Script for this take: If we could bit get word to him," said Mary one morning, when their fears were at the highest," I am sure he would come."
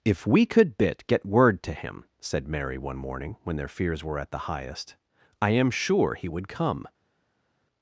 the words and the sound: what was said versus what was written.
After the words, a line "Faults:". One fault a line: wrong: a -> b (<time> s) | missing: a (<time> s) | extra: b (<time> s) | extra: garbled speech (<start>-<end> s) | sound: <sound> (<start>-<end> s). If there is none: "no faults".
If we could bit get word to him," said Mary one morning, when their fears were at the highest," I am sure he would come."
Faults:
no faults